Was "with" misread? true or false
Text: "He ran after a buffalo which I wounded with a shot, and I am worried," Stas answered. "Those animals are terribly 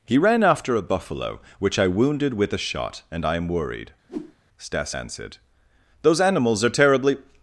false